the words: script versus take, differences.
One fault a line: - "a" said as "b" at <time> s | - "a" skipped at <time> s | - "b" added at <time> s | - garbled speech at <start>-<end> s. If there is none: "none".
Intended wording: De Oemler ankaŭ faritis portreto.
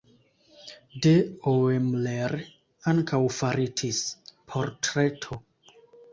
none